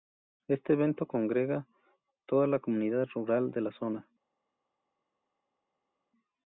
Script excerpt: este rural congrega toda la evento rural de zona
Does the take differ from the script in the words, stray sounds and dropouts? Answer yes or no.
yes